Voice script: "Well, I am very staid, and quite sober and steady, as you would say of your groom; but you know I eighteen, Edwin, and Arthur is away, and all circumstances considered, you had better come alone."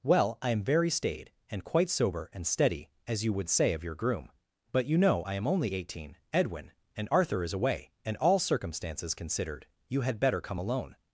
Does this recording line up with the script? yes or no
no